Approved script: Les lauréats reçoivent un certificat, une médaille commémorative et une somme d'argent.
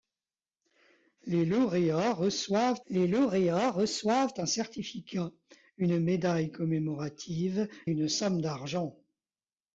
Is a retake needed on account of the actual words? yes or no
yes